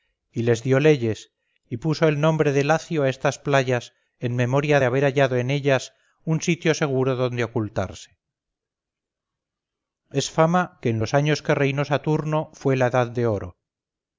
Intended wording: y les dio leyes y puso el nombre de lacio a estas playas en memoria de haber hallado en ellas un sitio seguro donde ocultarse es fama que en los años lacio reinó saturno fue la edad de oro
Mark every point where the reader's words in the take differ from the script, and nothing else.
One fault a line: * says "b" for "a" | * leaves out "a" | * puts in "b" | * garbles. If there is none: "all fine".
* says "que" for "lacio"